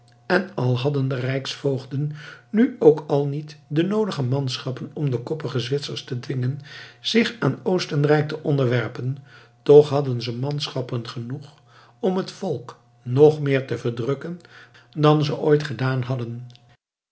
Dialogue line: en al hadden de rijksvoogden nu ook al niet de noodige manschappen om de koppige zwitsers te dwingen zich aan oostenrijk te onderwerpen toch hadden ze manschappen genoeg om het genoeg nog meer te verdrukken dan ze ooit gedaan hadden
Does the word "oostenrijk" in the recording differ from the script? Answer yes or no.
no